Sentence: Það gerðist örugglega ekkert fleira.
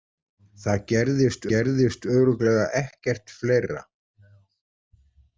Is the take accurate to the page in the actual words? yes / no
no